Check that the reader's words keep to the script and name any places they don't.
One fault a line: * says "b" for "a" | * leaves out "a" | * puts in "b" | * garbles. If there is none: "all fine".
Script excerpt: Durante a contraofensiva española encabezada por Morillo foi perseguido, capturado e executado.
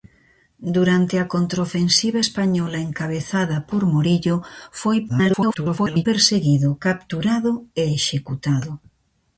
* garbles